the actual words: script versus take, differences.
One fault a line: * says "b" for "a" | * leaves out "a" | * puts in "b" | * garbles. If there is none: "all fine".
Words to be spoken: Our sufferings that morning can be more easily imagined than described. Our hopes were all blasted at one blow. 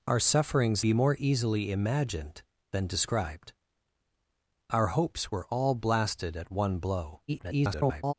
* leaves out "that morning can"
* garbles